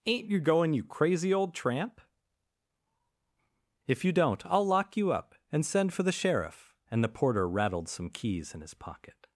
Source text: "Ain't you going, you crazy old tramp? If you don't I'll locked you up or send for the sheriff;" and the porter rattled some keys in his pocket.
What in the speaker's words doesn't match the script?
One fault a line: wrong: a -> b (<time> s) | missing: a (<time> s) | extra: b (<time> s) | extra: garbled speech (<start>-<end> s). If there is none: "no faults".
wrong: locked -> lock (4.7 s)
wrong: or -> and (5.5 s)